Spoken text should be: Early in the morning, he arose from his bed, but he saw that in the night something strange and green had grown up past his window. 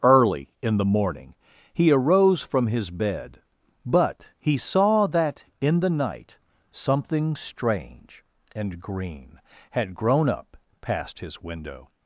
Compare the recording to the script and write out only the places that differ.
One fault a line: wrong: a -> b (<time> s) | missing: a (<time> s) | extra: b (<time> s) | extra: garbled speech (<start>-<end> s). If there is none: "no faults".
no faults